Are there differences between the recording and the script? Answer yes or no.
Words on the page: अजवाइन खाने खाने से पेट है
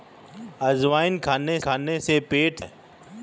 no